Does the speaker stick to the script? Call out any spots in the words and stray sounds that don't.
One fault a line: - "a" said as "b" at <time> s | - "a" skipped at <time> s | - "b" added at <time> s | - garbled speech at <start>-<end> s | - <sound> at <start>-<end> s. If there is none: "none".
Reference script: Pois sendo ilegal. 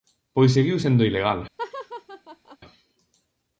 - "seguiu" added at 0.5 s
- laugh at 1.6-2.6 s